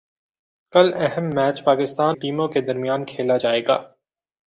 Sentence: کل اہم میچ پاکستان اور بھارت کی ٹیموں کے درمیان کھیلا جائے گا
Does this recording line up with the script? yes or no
no